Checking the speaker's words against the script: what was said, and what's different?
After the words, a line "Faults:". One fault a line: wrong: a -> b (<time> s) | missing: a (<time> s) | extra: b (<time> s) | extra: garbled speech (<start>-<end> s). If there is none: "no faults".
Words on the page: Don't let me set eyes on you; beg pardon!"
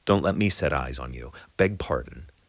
Don't let me set eyes on you; beg pardon!"
Faults:
no faults